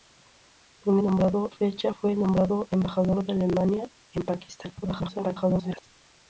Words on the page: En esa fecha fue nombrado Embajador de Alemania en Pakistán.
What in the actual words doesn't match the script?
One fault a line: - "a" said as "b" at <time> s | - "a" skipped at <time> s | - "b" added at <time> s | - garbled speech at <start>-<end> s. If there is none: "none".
- "esa" said as "nombrado" at 1.0 s
- garbled speech at 4.8-5.9 s